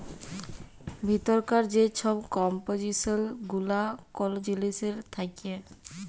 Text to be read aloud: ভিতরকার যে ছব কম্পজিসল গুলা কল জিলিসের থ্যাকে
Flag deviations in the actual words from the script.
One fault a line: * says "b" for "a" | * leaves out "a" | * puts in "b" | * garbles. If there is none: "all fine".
all fine